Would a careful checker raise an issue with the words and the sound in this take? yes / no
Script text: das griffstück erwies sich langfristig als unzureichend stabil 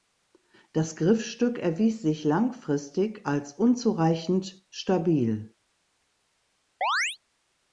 yes